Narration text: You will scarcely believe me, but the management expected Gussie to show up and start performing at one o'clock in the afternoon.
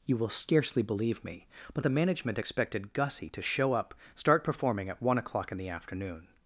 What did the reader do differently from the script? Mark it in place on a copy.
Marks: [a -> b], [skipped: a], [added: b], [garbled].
You will scarcely believe me, but the management expected Gussie to show up [skipped: and] start performing at one o'clock in the afternoon.